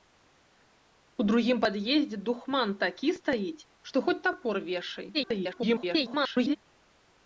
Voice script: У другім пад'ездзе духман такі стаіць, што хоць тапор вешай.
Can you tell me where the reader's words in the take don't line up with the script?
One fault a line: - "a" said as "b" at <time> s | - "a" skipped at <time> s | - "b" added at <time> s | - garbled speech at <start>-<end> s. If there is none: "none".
- garbled speech at 5.1-6.6 s